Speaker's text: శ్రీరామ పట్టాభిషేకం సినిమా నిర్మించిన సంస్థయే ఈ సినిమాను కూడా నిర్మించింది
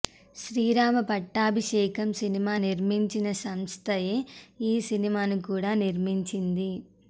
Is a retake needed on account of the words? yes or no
no